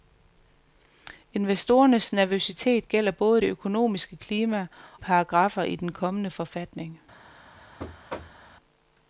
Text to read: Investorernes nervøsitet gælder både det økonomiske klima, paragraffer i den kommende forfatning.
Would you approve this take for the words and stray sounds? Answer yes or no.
no